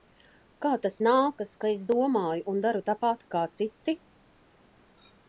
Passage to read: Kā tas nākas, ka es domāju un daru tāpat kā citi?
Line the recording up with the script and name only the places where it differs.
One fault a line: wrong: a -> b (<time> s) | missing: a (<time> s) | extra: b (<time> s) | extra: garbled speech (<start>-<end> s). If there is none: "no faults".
no faults